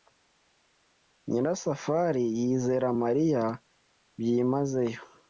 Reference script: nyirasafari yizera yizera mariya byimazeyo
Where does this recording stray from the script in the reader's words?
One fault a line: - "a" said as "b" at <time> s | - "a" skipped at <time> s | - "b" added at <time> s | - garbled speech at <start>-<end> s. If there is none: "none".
- "yizera" skipped at 2.9 s